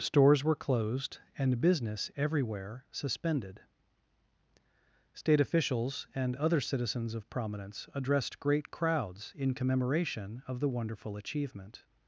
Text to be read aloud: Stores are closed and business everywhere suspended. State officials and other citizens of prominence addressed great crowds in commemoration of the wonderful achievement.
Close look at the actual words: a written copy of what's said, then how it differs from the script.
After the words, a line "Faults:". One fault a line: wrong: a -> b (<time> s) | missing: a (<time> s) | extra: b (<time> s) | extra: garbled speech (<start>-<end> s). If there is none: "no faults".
Stores were closed and business everywhere suspended. State officials and other citizens of prominence addressed great crowds in commemoration of the wonderful achievement.
Faults:
wrong: are -> were (0.4 s)